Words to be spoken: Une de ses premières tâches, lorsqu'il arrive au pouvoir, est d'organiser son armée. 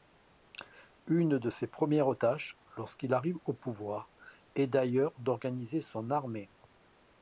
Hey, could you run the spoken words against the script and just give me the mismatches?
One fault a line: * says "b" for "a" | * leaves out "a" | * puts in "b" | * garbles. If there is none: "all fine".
* puts in "d'ailleurs"